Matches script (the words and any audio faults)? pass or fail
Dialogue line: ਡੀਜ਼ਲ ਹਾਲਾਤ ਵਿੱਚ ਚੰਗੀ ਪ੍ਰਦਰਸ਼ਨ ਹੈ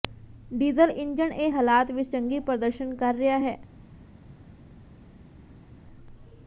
fail